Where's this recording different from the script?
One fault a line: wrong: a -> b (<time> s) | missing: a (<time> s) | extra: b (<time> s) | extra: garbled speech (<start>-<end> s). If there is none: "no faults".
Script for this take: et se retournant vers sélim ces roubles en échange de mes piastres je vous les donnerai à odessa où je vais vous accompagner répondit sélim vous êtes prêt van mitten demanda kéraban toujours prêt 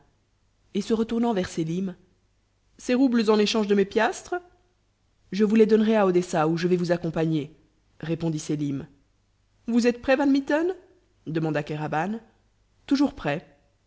no faults